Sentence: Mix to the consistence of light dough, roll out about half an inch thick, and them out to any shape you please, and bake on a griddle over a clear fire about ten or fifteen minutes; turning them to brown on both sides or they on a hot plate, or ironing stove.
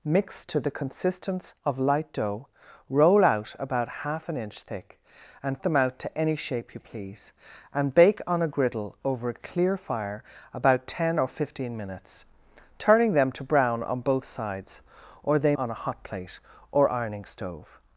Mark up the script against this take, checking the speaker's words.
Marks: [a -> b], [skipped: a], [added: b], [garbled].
Mix to the consistence of light dough, roll out about half an inch thick, and them out to any shape you please, and bake on a griddle over a clear fire about ten or fifteen minutes; turning them to brown on both sides or they on a hot plate, or ironing stove.